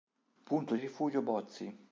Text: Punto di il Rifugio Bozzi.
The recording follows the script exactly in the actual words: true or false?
true